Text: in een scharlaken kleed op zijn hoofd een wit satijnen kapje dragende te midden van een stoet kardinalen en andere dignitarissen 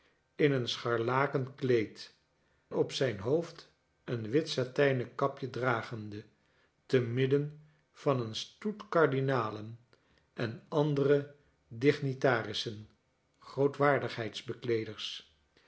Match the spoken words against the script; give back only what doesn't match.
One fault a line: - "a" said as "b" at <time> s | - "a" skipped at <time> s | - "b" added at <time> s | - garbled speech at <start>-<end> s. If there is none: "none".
none